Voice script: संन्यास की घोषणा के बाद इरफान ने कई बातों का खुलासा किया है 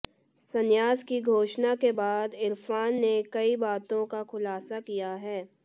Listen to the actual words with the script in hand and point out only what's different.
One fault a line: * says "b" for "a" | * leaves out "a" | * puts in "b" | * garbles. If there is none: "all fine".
all fine